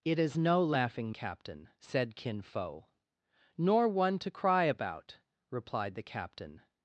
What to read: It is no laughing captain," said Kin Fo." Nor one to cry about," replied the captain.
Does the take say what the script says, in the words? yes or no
yes